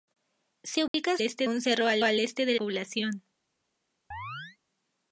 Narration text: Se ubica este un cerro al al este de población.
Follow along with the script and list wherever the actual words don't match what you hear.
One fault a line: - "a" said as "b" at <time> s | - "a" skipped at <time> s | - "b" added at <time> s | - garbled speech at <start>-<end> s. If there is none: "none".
none